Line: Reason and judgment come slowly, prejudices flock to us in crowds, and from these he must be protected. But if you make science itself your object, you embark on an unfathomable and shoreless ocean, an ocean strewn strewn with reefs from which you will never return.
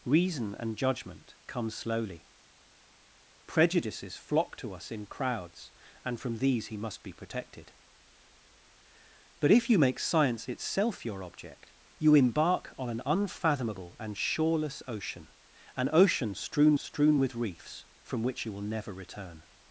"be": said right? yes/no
yes